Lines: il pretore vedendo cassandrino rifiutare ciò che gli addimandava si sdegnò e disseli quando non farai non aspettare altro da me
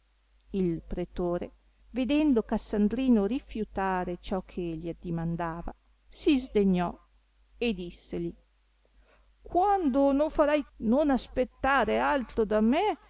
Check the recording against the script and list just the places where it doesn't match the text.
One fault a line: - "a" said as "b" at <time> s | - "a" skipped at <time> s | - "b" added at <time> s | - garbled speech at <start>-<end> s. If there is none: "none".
none